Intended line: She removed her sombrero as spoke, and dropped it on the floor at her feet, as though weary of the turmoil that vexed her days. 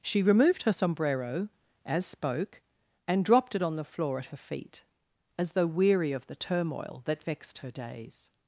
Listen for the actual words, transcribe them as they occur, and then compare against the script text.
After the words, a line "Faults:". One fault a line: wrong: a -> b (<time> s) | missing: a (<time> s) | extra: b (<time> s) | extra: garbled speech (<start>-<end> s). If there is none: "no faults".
She removed her sombrero as spoke, and dropped it on the floor at her feet, as though weary of the turmoil that vexed her days.
Faults:
no faults